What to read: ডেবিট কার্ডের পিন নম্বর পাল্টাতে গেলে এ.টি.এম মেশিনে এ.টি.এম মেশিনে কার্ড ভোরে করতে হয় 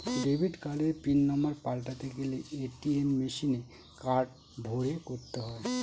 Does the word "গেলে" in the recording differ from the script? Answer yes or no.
no